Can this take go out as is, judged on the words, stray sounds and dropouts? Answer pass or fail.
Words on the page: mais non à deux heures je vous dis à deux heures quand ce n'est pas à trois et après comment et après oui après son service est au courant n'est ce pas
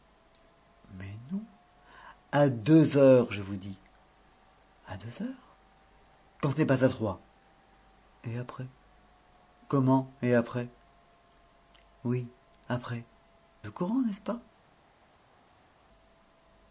fail